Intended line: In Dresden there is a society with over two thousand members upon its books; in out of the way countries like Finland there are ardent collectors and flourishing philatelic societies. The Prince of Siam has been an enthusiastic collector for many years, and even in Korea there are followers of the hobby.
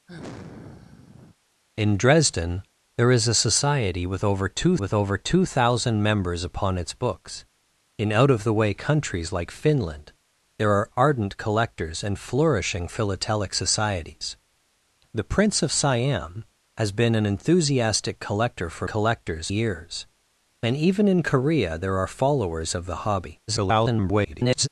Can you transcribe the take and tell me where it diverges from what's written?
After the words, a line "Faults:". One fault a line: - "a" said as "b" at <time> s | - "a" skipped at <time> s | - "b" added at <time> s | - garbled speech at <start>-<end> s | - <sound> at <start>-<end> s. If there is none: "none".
In Dresden there is a society with over two with over two thousand members upon its books; in out of the way countries like Finland there are ardent collectors and flourishing philatelic societies. The Prince of Siam has been an enthusiastic collector for collectors years, and even in Korea there are followers of the hobby. [garbled]
Faults:
- sigh at 0.1-1.4 s
- "with over two" added at 4.8 s
- "many" said as "collectors" at 18.8 s
- garbled speech at 23.5-24.7 s